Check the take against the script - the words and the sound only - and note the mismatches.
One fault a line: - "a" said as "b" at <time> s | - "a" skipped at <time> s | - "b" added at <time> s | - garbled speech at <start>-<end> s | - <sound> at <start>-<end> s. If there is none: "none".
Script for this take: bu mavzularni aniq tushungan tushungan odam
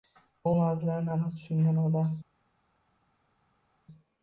- "tushungan" skipped at 1.8 s